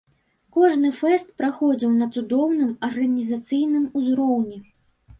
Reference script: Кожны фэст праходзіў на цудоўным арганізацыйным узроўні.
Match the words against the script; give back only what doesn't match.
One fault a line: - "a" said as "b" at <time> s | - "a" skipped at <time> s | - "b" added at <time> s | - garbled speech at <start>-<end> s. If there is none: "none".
none